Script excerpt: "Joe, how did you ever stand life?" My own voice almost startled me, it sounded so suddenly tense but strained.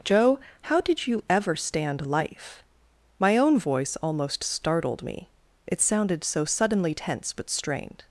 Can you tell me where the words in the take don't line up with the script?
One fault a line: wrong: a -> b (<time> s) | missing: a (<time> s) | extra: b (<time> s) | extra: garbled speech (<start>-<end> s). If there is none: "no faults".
no faults